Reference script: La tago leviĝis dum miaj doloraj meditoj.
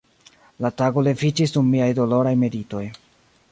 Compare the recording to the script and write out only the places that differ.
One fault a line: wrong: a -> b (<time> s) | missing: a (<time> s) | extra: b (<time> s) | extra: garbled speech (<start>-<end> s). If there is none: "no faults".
no faults